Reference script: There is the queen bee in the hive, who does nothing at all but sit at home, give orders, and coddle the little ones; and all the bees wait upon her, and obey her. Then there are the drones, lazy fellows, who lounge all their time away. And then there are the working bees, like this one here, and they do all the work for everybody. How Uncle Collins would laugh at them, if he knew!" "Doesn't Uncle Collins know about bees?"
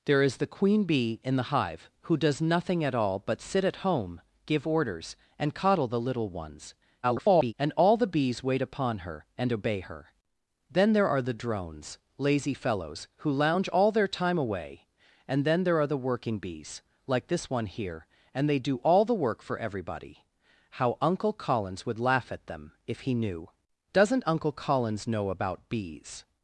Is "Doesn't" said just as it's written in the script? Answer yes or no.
yes